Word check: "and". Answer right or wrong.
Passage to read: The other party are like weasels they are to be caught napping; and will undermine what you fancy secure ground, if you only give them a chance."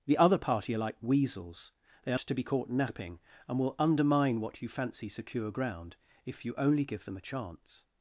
right